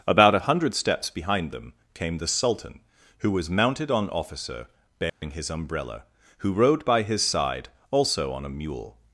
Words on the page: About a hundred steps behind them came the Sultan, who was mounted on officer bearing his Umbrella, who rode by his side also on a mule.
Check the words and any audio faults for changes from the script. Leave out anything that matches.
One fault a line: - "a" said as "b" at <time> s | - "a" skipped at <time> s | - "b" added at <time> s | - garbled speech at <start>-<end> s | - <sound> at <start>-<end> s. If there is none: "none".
- dropout at 5.1-5.2 s